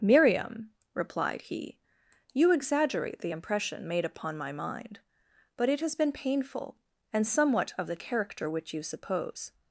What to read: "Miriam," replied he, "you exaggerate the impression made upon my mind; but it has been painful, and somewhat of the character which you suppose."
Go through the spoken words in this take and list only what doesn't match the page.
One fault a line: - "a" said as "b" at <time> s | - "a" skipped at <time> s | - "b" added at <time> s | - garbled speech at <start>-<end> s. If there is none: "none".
none